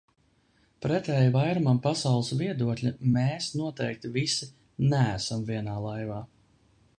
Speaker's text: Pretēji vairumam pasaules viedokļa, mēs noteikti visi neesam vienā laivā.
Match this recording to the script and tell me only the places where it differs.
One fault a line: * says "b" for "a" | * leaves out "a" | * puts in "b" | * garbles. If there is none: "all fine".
all fine